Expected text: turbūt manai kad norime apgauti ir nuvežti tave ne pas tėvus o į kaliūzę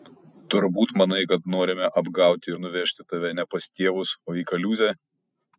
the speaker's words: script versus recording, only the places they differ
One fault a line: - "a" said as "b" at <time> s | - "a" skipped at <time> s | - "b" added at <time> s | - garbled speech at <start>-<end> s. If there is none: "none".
none